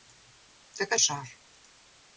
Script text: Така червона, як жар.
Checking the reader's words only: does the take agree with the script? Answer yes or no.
no